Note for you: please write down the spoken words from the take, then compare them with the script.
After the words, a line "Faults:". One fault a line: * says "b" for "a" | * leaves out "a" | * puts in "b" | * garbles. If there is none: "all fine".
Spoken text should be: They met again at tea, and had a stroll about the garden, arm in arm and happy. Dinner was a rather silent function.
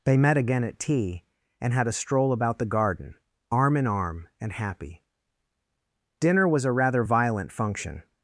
They met again at tea, and had a stroll about the garden, arm in arm and happy. Dinner was a rather violent function.
Faults:
* says "violent" for "silent"